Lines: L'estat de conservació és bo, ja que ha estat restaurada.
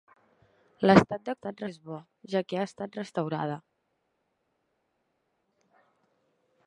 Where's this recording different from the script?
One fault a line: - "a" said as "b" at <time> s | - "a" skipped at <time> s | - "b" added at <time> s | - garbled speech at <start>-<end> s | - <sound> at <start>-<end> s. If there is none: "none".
- "conservació" said as "estat" at 1.4 s